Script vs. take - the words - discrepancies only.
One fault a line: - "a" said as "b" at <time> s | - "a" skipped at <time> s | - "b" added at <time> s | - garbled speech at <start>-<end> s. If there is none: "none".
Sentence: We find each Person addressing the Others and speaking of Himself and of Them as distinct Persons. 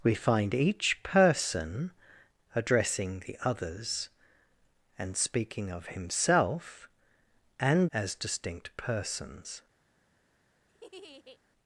- "of Them" skipped at 7.9 s